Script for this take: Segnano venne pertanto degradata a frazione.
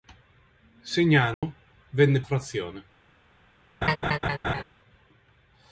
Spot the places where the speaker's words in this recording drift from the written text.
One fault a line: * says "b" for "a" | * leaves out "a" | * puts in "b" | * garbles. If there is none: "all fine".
* leaves out "pertanto degradata a"